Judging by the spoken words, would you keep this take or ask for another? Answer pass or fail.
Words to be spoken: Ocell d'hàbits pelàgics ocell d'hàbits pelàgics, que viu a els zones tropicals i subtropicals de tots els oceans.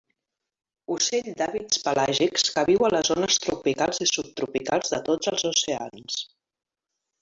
fail